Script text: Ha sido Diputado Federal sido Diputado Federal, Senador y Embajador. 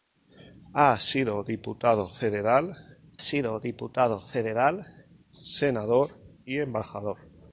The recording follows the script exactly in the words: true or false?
true